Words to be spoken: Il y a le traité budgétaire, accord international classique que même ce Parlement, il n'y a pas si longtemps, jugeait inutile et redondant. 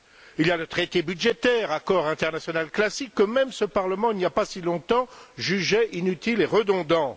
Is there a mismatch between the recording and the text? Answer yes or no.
no